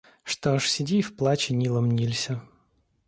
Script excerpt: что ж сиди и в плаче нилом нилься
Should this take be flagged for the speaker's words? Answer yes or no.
no